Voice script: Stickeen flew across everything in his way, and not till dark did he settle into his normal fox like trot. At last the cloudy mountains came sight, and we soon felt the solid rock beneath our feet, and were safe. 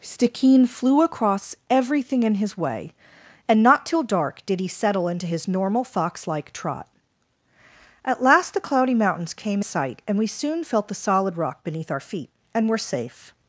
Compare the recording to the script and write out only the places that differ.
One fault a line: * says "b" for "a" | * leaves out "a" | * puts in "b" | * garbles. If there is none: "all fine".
all fine